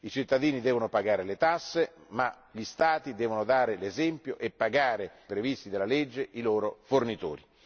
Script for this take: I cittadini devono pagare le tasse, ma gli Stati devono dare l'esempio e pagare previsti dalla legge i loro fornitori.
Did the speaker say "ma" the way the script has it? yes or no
yes